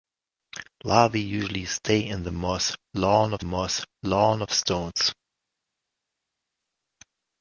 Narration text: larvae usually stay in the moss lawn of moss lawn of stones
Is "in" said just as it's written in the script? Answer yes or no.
yes